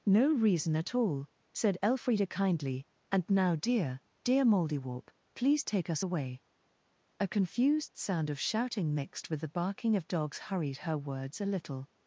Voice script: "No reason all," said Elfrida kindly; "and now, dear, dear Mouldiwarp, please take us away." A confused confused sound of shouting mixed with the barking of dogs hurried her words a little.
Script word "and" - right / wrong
right